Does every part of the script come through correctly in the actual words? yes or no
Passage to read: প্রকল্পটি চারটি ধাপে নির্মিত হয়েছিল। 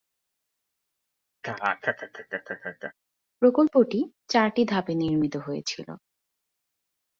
yes